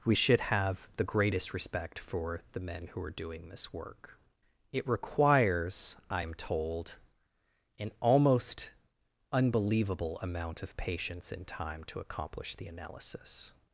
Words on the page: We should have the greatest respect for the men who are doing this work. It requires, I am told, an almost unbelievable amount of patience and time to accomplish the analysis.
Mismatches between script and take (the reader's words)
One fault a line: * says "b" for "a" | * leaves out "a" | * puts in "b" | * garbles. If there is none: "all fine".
all fine